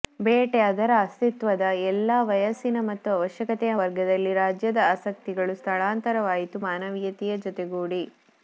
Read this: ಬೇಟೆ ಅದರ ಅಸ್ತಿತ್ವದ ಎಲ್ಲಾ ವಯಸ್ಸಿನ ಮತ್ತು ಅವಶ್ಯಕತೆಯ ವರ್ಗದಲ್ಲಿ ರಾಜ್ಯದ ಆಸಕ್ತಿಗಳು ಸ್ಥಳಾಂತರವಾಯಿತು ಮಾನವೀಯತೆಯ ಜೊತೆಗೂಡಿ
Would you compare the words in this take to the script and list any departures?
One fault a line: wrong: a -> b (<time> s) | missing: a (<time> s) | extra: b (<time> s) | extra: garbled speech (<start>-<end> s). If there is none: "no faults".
no faults